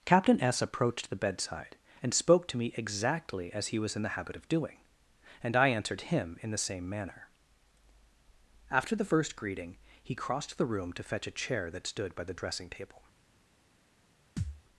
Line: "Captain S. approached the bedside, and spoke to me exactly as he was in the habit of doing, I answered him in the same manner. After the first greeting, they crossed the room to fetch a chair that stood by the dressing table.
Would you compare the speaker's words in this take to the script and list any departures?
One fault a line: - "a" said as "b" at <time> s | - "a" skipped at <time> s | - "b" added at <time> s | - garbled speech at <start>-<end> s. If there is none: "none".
- "and" added at 5.4 s
- "they" said as "he" at 10.0 s